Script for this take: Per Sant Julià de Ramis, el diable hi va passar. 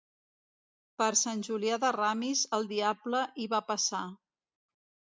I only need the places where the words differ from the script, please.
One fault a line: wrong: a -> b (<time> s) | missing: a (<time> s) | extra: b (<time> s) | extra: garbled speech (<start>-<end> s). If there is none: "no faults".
no faults